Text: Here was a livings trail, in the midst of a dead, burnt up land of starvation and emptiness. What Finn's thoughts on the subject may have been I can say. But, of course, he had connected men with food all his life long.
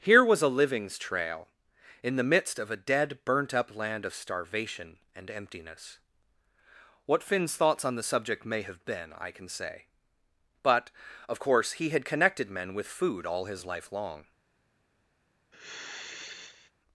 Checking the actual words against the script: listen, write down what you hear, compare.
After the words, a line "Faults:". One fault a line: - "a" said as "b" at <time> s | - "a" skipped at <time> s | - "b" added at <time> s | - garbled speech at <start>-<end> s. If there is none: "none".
Here was a livings trail, in the midst of a dead, burnt up land of starvation and emptiness. What Finn's thoughts on the subject may have been I can say. But, of course, he had connected men with food all his life long.
Faults:
none